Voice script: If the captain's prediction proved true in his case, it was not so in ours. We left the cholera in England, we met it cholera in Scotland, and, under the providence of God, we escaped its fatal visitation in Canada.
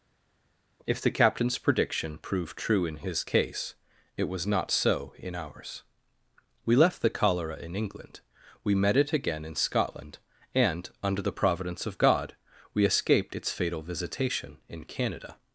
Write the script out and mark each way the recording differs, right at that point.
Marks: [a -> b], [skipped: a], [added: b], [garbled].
If the captain's prediction proved true in his case, it was not so in ours. We left the cholera in England, we met it [cholera -> again] in Scotland, and, under the providence of God, we escaped its fatal visitation in Canada.